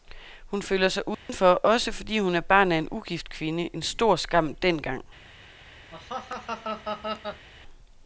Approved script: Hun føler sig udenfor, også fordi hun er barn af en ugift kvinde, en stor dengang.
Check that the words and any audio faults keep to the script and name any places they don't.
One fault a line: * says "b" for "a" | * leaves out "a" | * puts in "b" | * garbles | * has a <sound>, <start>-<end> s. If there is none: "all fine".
* has a dropout, 1.1-1.3 s
* puts in "skam"
* has a laugh, 5.9-7.5 s